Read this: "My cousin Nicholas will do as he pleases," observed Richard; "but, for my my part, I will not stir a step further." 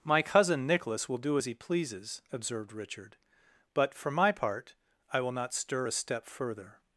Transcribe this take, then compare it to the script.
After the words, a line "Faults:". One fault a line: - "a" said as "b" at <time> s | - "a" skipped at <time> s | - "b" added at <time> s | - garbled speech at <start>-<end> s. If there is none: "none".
"My cousin Nicholas will do as he pleases," observed Richard; "but, for my part, I will not stir a step further."
Faults:
- "my" skipped at 4.3 s